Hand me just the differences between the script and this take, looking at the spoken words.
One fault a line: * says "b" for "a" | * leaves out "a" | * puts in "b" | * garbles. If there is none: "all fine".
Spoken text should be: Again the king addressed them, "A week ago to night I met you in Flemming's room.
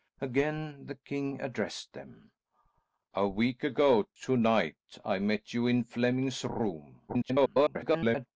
* garbles